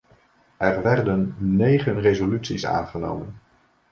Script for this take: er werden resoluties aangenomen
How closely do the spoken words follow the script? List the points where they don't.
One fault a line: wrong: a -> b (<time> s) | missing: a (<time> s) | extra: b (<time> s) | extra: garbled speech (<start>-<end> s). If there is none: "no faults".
extra: negen (1.4 s)